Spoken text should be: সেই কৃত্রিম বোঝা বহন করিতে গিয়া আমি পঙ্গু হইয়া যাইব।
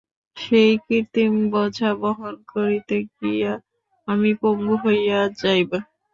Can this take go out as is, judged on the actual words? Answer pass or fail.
pass